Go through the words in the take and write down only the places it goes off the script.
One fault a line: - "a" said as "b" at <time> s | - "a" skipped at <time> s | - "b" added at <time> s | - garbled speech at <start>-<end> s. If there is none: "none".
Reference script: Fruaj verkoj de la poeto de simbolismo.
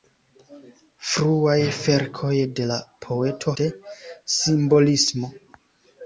none